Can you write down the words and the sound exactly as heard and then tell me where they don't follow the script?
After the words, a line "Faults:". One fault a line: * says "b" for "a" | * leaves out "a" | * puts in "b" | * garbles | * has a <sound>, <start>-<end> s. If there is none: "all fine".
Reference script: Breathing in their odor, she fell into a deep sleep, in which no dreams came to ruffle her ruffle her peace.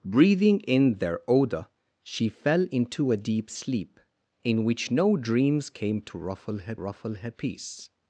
Breathing in their odor, she fell into a deep sleep, in which no dreams came to ruffle her ruffle her peace.
Faults:
all fine